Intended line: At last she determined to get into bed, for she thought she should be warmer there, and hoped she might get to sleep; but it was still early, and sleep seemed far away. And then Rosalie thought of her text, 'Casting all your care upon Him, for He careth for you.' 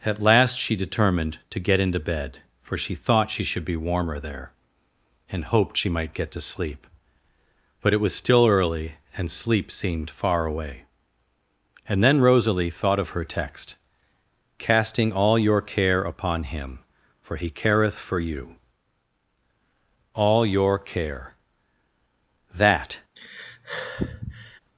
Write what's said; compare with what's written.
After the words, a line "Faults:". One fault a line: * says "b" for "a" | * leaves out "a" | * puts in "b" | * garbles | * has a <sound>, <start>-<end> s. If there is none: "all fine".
At last she determined to get into bed, for she thought she should be warmer there, and hoped she might get to sleep; but it was still early, and sleep seemed far away. And then Rosalie thought of her text, 'Casting all your care upon Him, for He careth for you.' '"All your care," that
Faults:
* puts in "All your care that"
* has a sigh, 23.2-24.6 s